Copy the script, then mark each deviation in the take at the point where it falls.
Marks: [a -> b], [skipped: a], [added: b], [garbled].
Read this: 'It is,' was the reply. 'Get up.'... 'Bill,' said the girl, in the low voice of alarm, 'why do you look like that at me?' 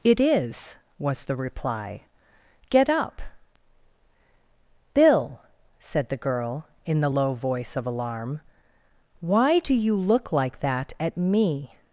'It is,' was the reply. 'Get up.'... 'Bill,' said the girl, in the low voice of alarm, 'why do you look like that at me?'